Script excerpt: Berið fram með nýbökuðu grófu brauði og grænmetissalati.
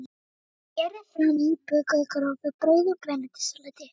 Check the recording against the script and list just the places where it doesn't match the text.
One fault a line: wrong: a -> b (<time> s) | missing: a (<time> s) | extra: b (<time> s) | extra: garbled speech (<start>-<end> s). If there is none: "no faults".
missing: með (1.4 s)